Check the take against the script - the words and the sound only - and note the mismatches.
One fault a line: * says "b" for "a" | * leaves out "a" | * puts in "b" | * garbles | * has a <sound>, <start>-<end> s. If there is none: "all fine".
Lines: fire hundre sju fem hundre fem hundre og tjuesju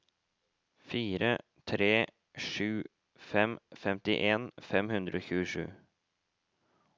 * says "tre" for "hundre"
* says "femtien" for "hundre"